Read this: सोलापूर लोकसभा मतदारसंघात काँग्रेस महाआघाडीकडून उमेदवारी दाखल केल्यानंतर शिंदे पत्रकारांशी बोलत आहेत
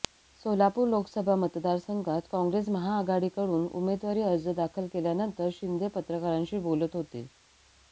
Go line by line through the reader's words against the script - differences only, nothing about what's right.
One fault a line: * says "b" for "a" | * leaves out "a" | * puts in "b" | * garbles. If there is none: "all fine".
* puts in "अर्ज"
* says "होते" for "आहेत"